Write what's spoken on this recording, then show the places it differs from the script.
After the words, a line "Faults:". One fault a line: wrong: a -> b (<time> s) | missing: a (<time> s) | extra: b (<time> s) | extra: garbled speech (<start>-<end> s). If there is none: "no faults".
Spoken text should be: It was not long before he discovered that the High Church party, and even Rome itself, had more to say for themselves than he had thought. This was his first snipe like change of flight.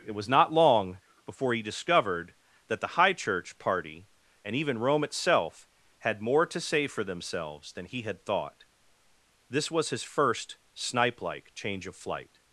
It was not long before he discovered that the High Church party, and even Rome itself, had more to say for themselves than he had thought. This was his first snipe like change of flight.
Faults:
no faults